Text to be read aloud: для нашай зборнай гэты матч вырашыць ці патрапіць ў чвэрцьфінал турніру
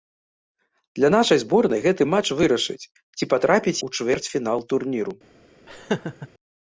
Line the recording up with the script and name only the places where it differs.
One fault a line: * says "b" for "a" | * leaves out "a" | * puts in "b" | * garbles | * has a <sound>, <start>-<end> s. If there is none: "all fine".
* has a laugh, 5.7-6.3 s